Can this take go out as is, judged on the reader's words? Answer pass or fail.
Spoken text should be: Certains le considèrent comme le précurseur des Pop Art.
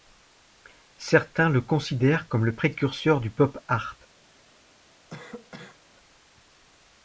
fail